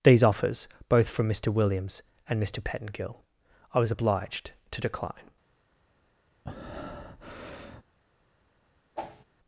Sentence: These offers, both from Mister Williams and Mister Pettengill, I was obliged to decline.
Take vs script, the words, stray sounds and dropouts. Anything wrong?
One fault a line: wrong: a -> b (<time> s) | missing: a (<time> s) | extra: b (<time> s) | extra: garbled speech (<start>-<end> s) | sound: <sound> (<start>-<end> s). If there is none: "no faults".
sound: breath (6.4-7.8 s)
sound: whoosh (9.0-9.2 s)